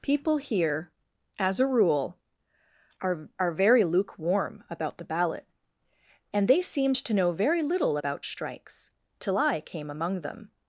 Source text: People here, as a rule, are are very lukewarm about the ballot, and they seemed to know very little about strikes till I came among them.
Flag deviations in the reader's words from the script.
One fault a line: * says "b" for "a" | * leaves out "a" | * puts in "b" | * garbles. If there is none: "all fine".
all fine